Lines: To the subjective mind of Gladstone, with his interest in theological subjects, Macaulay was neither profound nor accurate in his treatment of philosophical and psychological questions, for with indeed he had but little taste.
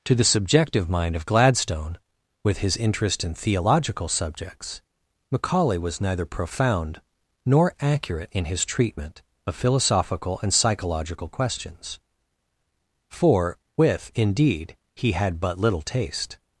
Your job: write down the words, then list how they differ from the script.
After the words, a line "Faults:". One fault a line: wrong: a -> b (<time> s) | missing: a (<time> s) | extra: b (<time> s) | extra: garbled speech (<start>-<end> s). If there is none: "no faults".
To the subjective mind of Gladstone, with his interest in theological subjects, Macaulay was neither profound nor accurate in his treatment of philosophical and psychological questions, for with indeed he had but little taste.
Faults:
no faults